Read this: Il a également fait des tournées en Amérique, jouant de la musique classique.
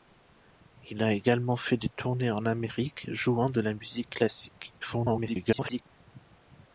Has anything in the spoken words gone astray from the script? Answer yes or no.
yes